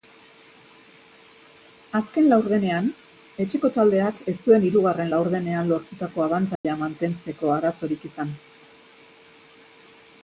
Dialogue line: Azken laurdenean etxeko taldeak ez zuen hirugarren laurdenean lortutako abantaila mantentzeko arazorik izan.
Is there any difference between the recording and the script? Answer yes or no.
no